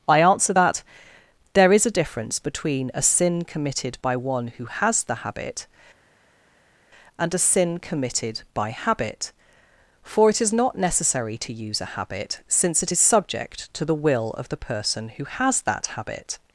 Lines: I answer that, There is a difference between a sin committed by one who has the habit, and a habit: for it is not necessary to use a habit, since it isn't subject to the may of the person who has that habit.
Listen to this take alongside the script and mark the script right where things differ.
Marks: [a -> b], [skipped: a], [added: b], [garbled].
I answer that, There is a difference between a sin committed by one who has the habit, and a [added: sin committed by] habit: for it is not necessary to use a habit, since it [isn't -> is] subject to the [may -> will] of the person who has that habit.